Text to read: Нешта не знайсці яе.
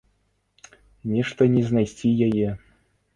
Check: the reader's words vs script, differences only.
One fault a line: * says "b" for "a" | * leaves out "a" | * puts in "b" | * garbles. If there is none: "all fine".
all fine